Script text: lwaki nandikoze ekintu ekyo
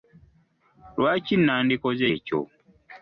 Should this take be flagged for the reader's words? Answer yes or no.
yes